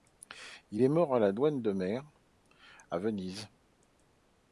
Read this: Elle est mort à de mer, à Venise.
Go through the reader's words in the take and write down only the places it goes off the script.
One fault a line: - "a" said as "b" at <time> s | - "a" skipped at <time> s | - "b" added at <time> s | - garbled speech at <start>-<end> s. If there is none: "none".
- "Elle" said as "Il" at 0.7 s
- "la douane" added at 1.2 s